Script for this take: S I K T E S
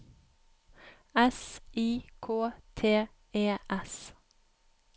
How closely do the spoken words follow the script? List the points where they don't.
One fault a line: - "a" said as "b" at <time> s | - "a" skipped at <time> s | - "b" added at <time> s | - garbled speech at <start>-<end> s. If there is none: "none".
none